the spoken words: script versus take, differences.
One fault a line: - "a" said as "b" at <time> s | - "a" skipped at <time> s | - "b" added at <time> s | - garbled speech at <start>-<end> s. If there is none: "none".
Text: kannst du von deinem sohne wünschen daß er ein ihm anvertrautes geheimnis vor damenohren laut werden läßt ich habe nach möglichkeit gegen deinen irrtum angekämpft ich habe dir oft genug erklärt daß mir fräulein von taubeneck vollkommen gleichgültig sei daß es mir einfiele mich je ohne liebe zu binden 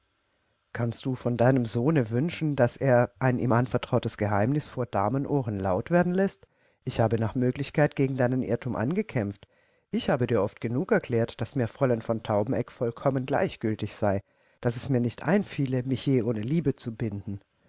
- "nicht" added at 15.0 s